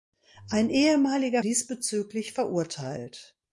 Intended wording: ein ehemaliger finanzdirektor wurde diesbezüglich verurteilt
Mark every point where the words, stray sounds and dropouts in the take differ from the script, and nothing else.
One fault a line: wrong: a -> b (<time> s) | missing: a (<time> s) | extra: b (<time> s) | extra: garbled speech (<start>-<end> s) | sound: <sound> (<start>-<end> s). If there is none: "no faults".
missing: finanzdirektor wurde (1.4 s)